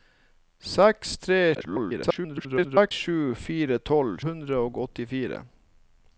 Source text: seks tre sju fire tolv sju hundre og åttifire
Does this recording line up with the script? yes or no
no